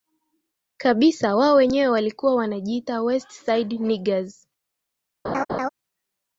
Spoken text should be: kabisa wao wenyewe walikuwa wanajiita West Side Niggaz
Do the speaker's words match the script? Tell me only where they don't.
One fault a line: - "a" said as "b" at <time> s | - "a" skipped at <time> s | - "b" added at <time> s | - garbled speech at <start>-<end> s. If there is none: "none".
none